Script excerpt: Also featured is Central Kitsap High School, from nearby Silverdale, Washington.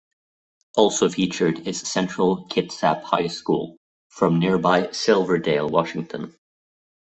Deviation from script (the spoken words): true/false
false